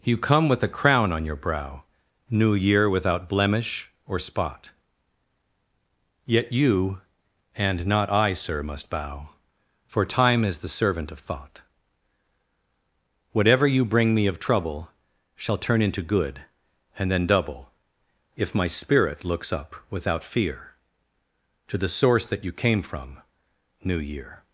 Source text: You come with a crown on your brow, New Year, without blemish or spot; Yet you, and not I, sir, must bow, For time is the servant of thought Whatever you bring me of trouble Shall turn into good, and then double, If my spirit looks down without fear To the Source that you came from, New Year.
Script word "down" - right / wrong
wrong